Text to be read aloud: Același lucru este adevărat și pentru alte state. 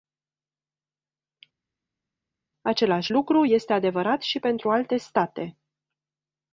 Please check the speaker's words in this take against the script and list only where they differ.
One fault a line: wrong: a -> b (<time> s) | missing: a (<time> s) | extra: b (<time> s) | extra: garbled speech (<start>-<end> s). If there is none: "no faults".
no faults